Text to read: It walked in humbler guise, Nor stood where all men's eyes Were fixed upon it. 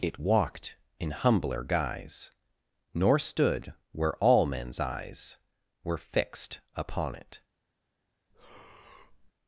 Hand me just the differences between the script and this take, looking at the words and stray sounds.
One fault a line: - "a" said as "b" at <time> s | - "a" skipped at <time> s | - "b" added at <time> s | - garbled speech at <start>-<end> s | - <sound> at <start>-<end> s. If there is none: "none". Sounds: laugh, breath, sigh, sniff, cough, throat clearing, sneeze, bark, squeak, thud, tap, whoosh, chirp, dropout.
- breath at 8.3-9.3 s